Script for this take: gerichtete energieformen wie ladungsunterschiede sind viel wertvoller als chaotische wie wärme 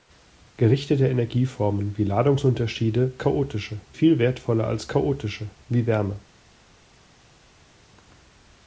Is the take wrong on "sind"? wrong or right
wrong